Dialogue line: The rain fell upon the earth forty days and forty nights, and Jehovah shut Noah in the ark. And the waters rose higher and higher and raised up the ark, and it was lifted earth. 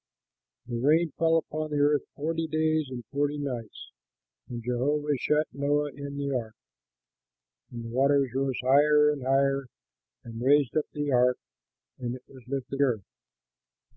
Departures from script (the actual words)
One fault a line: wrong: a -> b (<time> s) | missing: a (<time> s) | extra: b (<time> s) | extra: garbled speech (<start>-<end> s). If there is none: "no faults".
no faults